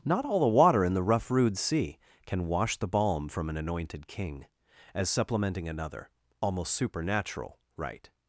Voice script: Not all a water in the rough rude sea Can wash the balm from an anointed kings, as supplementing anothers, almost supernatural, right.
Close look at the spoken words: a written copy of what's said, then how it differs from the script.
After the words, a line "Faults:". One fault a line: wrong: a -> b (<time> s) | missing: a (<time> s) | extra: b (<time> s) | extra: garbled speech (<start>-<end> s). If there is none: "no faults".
Not all the water in the rough rude sea Can wash the balm from an anointed king, as supplementing another, almost supernatural, right.
Faults:
wrong: a -> the (0.4 s)
wrong: kings -> king (4.1 s)
wrong: anothers -> another (5.7 s)